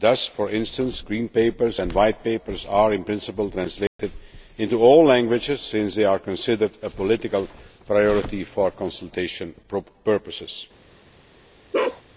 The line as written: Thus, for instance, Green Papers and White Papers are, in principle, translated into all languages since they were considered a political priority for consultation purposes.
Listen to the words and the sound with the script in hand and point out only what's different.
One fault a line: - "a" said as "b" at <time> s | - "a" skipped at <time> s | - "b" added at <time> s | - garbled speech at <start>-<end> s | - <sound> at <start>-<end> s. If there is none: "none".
- dropout at 3.9-4.0 s
- "were" said as "are" at 6.0 s
- bark at 11.7-12.0 s